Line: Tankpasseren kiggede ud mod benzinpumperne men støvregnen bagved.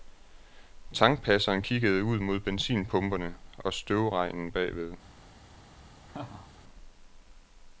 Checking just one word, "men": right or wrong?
wrong